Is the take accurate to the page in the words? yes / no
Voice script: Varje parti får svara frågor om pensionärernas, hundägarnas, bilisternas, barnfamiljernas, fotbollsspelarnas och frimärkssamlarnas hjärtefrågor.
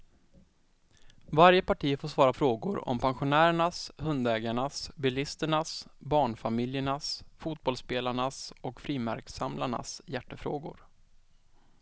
yes